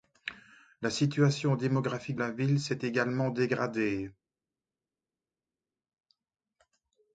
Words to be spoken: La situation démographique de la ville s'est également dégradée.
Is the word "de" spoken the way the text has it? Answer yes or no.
no